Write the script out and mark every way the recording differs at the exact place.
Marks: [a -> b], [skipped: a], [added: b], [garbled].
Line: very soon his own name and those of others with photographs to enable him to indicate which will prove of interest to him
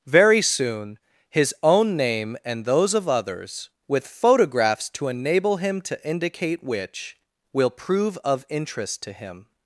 very soon his own name and those of others with photographs to enable him to indicate which will prove of interest to him